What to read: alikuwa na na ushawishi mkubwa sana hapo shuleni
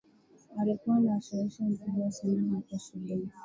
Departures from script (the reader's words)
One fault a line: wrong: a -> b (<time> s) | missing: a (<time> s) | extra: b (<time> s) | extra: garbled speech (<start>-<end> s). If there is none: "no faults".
missing: na (1.2 s)